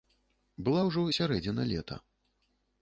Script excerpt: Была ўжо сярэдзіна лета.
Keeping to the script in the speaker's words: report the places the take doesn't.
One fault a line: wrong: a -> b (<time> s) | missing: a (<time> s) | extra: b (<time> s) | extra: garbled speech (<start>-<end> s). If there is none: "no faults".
no faults